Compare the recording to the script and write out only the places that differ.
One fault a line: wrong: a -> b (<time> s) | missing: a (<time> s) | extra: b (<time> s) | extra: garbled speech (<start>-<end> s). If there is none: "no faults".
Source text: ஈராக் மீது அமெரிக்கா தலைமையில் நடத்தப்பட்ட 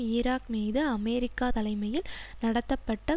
no faults